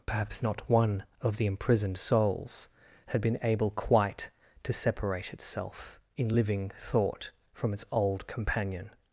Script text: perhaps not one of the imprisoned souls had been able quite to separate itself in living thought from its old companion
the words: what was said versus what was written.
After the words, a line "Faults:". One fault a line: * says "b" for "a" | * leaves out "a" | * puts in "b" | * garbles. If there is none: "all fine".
perhaps not one of the imprisoned souls had been able quite to separate itself in living thought from its old companion
Faults:
all fine